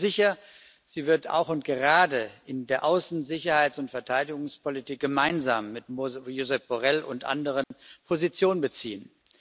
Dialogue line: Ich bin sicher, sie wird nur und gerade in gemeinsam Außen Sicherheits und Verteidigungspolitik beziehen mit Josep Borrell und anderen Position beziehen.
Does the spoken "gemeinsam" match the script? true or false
false